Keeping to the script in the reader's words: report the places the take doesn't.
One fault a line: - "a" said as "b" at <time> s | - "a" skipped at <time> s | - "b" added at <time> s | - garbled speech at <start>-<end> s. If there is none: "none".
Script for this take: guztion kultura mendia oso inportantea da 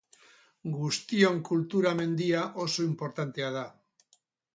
none